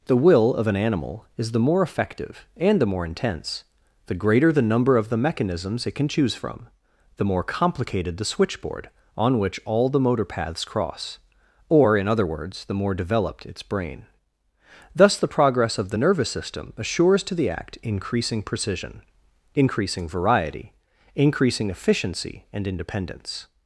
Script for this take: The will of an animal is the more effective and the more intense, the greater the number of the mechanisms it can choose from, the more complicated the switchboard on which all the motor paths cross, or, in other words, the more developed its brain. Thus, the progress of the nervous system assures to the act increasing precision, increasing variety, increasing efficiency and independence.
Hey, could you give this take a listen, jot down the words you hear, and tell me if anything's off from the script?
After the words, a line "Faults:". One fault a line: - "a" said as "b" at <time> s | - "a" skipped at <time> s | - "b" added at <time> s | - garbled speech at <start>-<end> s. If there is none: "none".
The will of an animal is the more effective and the more intense, the greater the number of the mechanisms it can choose from, the more complicated the switchboard on which all the motor paths cross, or, in other words, the more developed its brain. Thus, the progress of the nervous system assures to the act increasing precision, increasing variety, increasing efficiency and independence.
Faults:
none